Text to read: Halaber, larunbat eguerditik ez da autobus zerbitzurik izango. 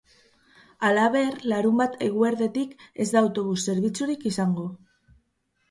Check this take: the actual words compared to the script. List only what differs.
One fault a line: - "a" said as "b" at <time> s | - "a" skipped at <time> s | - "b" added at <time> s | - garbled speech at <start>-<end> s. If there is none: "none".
none